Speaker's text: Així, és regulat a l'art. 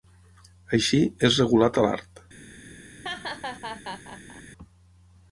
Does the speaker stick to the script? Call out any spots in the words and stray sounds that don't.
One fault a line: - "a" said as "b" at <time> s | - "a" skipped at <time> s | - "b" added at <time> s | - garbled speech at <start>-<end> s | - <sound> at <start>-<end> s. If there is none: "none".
- laugh at 3.0-4.4 s